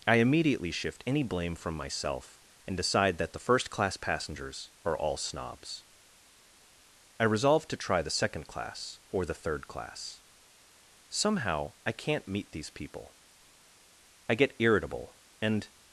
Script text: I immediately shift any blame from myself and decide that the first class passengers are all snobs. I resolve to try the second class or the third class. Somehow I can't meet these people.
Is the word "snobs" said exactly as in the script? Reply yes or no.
yes